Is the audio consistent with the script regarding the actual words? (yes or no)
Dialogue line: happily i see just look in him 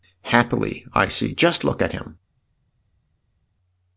no